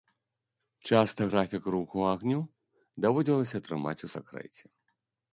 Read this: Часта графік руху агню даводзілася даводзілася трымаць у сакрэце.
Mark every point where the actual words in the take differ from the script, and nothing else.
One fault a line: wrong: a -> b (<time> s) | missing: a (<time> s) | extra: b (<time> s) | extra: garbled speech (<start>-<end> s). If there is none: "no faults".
missing: даводзілася (3.6 s)